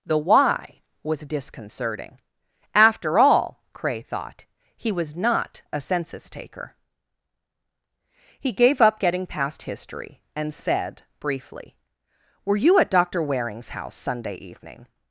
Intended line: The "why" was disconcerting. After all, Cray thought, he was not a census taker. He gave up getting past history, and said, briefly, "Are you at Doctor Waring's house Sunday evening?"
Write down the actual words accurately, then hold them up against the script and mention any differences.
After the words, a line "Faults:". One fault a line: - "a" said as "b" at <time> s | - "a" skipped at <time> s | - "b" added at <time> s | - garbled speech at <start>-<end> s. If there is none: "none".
The "why" was disconcerting. After all, Cray thought, he was not a census taker. He gave up getting past history, and said, briefly, "Were you at Doctor Waring's house Sunday evening?"
Faults:
- "Are" said as "Were" at 12.4 s